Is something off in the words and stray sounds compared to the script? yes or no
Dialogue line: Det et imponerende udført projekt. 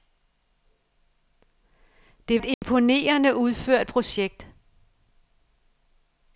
yes